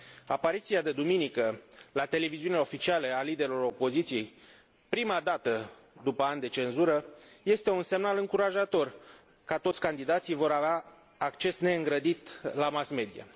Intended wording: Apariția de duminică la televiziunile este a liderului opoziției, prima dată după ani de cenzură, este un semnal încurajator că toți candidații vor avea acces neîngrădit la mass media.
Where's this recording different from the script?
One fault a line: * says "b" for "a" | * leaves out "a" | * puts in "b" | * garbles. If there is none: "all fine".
* says "oficiale" for "este"